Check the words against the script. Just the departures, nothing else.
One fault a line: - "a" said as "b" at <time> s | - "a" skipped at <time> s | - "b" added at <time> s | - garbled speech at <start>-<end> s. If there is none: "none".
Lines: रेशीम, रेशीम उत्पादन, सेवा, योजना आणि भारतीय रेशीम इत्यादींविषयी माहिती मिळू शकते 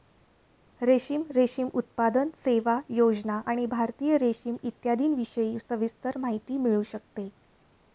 - "सविस्तर" added at 5.6 s